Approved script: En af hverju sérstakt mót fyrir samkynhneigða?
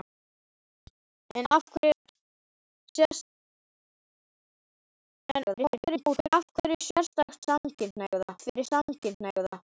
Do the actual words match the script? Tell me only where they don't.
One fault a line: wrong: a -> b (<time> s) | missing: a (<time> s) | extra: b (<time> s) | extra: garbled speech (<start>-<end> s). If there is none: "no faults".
extra: garbled speech (5.4-6.3 s)
wrong: mót -> samkynhneigða (7.5 s)